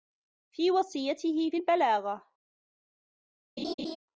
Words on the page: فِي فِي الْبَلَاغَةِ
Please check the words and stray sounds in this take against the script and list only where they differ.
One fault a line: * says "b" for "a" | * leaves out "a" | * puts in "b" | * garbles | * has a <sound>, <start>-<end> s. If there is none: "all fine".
* puts in "وَصِيَّتِهِ"
* has a laugh, 3.6-4.0 s